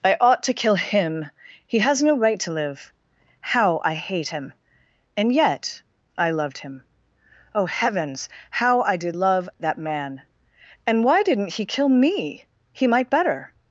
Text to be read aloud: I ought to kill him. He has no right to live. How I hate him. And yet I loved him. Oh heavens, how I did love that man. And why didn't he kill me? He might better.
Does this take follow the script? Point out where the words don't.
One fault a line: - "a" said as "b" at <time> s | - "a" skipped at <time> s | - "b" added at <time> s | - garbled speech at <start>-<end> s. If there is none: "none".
none